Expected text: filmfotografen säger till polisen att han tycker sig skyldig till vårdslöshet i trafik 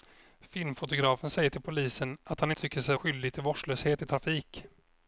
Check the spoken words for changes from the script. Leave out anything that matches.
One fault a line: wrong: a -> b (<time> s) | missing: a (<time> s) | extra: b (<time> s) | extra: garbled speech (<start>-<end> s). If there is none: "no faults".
no faults